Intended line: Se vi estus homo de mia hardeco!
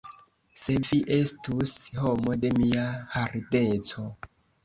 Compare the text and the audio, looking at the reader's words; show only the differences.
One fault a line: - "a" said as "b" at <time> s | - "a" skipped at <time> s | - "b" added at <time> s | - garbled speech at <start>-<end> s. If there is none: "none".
none